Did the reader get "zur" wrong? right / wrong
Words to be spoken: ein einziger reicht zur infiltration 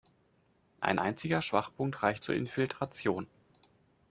right